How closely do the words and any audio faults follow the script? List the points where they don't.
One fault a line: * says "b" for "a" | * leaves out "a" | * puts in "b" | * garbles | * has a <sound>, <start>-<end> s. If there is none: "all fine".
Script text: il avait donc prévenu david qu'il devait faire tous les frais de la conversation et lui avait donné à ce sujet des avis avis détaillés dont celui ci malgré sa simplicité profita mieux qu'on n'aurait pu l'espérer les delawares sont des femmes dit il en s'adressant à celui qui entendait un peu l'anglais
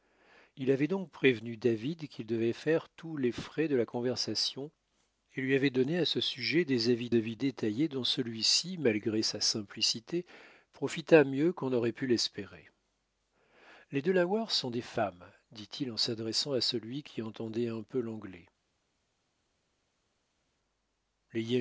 all fine